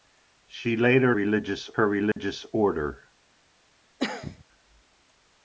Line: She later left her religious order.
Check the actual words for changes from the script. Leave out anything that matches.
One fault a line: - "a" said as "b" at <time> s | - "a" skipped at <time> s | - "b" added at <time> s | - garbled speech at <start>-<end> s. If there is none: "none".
- "left" said as "religious" at 1.1 s